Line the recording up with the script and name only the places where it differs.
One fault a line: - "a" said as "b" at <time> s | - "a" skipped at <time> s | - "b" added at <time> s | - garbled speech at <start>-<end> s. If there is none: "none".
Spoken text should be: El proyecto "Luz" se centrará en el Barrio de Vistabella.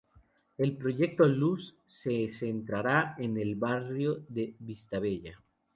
none